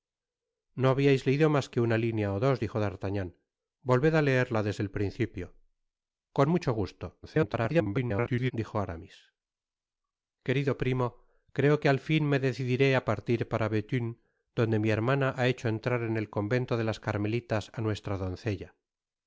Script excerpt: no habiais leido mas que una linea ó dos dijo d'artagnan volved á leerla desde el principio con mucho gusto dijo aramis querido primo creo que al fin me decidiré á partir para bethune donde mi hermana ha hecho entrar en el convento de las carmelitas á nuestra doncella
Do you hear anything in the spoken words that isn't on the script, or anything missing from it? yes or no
yes